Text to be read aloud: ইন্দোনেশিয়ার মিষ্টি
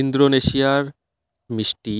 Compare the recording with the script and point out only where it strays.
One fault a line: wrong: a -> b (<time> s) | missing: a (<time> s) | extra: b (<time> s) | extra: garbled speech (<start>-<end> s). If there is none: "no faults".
no faults